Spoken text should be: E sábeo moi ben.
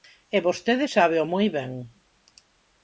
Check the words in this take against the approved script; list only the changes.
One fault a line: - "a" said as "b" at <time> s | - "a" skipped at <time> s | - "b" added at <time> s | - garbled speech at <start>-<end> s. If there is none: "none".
- "vostede" added at 0.5 s